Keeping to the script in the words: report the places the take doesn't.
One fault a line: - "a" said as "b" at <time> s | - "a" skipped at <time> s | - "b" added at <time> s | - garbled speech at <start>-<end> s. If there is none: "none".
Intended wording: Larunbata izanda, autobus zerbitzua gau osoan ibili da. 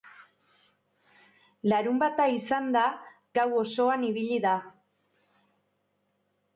- "autobus zerbitzua" skipped at 2.9 s